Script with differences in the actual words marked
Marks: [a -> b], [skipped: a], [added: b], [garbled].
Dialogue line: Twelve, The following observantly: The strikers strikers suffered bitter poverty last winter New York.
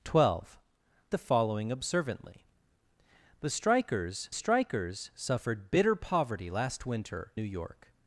Twelve, The following observantly: The strikers strikers suffered bitter poverty last winter New York.